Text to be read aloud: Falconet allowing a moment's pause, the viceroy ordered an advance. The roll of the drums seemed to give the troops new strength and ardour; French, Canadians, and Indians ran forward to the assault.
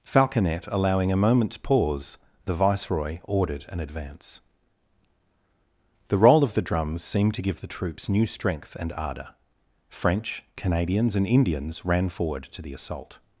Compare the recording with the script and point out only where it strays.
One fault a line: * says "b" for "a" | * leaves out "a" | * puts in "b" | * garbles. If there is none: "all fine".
all fine